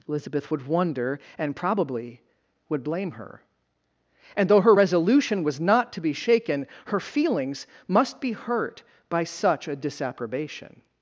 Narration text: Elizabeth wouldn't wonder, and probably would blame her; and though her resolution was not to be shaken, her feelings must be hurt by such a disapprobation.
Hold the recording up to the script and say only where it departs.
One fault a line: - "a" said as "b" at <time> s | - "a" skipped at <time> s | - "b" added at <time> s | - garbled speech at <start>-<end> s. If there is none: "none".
- "wouldn't" said as "would" at 0.5 s